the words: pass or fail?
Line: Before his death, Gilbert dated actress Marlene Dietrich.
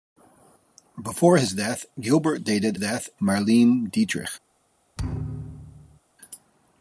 fail